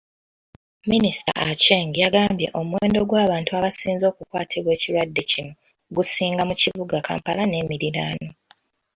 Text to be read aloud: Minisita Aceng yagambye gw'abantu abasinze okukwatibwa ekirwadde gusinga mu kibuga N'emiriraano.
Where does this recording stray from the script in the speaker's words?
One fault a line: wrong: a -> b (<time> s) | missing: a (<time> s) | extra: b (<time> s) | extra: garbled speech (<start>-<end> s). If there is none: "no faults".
extra: omuwendo (2.6 s)
extra: kino (5.3 s)
extra: Kampala (7.1 s)